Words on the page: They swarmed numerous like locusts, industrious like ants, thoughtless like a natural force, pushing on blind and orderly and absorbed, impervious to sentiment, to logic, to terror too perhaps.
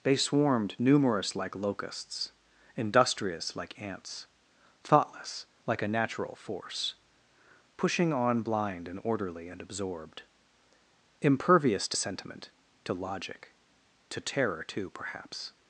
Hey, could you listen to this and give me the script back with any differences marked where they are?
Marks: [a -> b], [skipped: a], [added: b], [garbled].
They swarmed numerous like locusts, industrious like ants, thoughtless like a natural force, pushing on blind and orderly and absorbed, impervious to sentiment, to logic, to terror too perhaps.